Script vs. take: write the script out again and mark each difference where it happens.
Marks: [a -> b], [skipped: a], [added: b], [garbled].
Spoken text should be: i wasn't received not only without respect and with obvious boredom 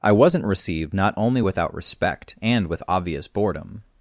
i wasn't received not only without respect and with obvious boredom